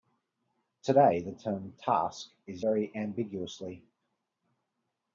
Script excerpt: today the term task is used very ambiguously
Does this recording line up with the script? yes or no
no